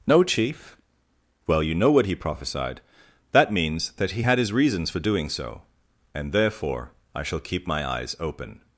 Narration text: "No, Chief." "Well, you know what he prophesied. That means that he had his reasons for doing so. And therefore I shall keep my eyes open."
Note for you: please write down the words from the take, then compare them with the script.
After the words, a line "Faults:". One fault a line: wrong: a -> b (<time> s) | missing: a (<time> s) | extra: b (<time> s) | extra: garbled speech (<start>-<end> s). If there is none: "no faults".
"No, Chief." "Well, you know what he prophesied. That means that he had his reasons for doing so. And therefore I shall keep my eyes open."
Faults:
no faults